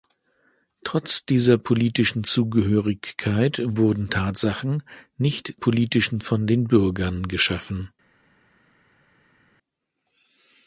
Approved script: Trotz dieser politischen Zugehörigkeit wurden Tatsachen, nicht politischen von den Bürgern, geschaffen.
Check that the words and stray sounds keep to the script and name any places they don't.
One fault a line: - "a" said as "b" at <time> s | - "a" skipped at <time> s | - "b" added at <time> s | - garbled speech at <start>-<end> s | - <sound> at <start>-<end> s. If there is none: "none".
none